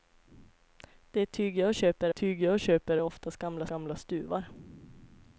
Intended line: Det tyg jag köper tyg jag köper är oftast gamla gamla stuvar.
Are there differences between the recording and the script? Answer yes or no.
no